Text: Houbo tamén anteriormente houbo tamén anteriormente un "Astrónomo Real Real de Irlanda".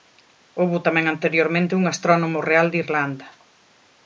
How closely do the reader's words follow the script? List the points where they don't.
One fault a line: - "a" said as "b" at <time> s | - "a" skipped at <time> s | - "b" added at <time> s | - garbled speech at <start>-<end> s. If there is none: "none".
- "houbo tamén anteriormente" skipped at 1.8 s
- "Real" skipped at 2.7 s